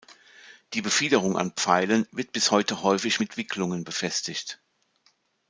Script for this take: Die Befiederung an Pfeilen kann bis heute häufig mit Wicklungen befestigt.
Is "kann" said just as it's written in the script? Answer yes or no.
no